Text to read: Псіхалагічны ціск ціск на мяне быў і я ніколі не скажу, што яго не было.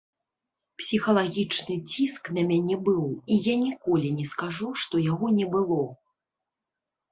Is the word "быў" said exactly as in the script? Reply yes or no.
yes